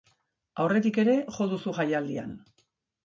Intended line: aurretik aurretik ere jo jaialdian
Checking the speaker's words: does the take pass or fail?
fail